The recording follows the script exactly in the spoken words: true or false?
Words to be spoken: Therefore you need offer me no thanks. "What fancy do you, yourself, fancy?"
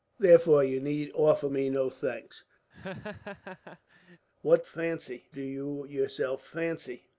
true